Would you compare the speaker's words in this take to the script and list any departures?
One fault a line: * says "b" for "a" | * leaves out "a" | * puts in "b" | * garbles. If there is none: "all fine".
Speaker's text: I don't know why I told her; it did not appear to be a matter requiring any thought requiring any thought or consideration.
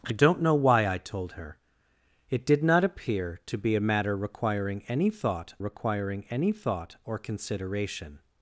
all fine